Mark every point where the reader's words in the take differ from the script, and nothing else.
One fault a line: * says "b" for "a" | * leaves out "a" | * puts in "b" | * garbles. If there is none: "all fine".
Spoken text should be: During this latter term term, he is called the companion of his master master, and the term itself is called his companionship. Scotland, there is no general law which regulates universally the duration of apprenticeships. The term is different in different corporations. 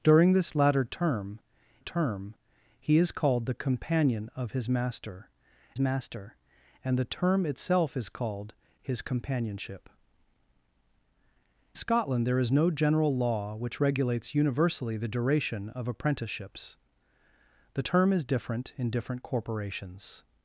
all fine